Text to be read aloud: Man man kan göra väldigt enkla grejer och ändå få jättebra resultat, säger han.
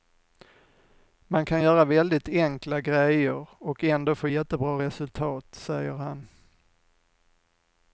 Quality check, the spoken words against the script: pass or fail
fail